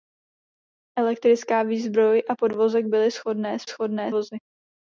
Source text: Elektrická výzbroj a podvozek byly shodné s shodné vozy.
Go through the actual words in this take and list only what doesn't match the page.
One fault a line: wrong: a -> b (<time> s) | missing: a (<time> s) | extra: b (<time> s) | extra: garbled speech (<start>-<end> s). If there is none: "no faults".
no faults